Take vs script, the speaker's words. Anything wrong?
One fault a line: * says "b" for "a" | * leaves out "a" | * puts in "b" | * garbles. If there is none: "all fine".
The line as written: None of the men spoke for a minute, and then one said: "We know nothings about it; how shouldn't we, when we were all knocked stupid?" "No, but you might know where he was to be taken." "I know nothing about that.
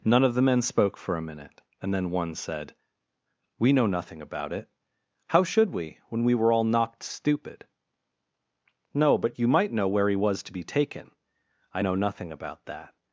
* says "nothing" for "nothings"
* says "should" for "shouldn't"